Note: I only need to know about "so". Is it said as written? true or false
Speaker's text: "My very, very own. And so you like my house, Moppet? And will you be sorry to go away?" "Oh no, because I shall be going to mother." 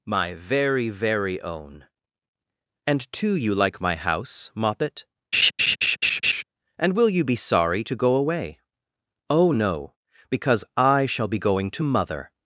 false